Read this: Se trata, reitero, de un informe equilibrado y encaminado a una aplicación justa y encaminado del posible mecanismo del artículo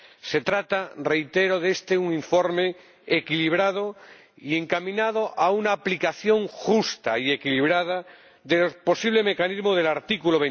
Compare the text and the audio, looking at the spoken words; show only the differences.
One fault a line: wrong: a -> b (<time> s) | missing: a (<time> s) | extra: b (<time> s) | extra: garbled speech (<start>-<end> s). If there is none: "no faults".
wrong: encaminado -> equilibrada (7.3 s)